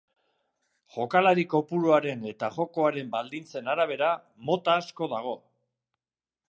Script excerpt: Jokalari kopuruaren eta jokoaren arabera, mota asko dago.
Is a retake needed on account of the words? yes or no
yes